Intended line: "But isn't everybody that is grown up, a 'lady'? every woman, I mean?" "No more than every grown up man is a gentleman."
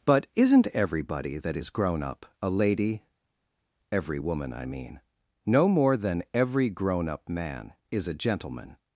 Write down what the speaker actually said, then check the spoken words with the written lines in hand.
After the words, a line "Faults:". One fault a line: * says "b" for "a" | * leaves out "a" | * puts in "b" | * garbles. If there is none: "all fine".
"But isn't everybody that is grown up, a 'lady'? every woman, I mean?" "No more than every grown up man is a gentleman."
Faults:
all fine